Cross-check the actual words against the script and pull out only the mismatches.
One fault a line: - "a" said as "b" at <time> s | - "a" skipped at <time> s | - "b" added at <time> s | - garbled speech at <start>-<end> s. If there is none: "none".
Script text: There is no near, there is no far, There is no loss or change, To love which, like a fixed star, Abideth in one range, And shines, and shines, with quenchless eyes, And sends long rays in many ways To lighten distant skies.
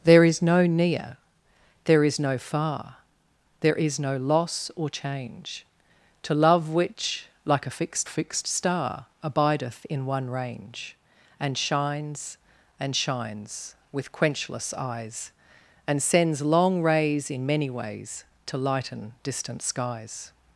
- "fixed" added at 8.0 s